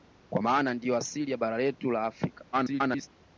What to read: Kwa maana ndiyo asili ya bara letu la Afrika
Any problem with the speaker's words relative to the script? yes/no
yes